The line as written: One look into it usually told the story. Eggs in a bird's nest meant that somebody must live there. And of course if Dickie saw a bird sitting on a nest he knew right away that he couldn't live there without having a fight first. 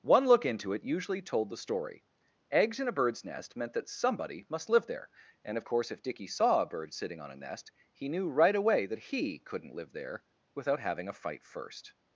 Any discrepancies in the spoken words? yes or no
no